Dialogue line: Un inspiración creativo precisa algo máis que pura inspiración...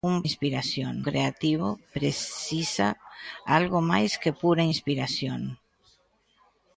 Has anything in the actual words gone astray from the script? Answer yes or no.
no